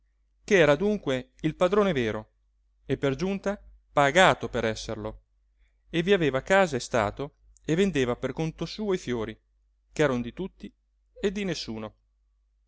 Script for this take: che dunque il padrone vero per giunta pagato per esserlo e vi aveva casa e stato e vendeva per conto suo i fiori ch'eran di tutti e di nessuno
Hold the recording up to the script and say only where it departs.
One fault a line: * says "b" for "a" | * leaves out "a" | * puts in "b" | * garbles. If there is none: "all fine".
* puts in "era"
* puts in "e"